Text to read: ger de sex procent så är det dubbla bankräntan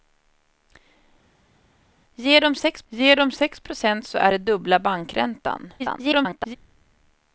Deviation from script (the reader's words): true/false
true